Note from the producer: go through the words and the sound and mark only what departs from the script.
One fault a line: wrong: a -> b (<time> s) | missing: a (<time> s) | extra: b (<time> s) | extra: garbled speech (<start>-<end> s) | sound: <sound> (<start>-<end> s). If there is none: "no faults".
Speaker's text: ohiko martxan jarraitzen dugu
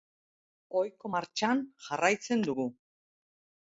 no faults